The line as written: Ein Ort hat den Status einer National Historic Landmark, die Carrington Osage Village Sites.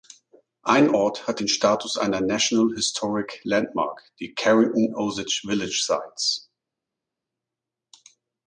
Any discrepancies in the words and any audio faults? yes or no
no